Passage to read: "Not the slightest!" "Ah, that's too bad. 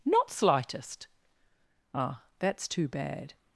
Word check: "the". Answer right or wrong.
wrong